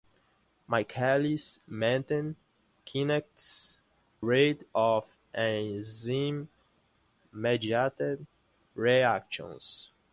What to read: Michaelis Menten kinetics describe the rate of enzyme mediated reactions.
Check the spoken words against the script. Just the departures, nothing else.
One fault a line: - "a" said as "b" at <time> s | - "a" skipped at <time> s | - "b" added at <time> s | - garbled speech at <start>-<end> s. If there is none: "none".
- "describe the" skipped at 3.8 s